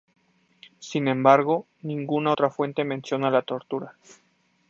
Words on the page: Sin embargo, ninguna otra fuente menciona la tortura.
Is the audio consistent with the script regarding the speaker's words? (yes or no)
yes